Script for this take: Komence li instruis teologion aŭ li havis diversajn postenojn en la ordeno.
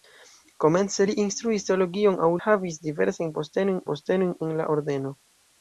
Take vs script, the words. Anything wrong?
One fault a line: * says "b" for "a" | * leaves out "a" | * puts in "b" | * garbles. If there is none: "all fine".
* leaves out "li"
* puts in "postenojn"